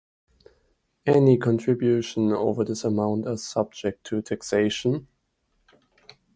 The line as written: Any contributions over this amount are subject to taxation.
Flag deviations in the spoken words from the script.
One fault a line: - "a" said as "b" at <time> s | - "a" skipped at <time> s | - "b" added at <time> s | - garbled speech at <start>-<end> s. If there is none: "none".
none